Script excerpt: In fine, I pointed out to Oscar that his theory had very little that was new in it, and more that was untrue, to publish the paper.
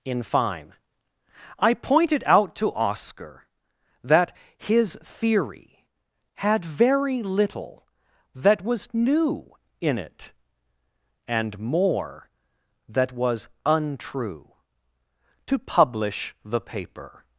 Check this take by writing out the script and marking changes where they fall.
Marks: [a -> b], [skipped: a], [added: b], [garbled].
In fine, I pointed out to Oscar that his theory had very little that was new in it, and more that was untrue, to publish the paper.